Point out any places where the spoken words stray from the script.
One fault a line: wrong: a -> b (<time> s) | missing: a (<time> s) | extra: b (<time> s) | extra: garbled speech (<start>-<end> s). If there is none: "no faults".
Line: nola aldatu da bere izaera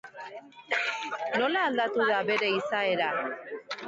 no faults